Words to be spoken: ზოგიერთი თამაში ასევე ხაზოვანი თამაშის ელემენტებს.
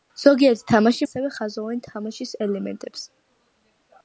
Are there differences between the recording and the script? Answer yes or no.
no